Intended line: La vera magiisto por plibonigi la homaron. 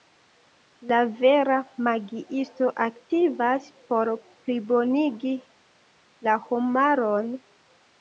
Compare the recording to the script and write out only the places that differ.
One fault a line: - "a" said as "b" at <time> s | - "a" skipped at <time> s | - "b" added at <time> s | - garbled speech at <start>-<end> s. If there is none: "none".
- "aktivas" added at 2.9 s